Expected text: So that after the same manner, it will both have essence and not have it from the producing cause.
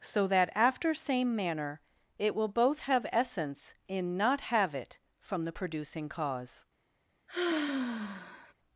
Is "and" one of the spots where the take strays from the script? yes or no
yes